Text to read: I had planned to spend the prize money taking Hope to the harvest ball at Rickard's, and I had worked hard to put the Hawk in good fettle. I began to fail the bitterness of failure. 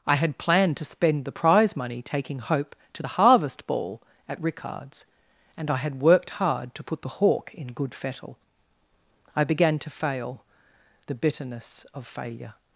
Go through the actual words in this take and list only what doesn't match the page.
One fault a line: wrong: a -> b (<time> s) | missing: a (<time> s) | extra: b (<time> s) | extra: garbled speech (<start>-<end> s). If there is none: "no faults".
no faults